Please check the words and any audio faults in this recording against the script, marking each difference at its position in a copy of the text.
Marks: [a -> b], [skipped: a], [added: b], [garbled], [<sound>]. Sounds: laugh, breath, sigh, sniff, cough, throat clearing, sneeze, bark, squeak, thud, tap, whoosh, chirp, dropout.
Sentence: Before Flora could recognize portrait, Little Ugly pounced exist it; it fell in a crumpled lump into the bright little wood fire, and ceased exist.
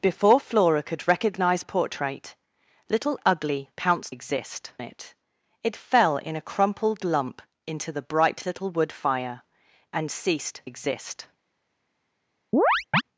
Before Flora could recognize portrait, Little Ugly pounced exist it; it fell in a crumpled lump into the bright little wood fire, and ceased exist. [chirp]